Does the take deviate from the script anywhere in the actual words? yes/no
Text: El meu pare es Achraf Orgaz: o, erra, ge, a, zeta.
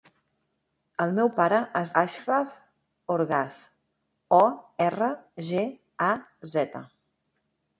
no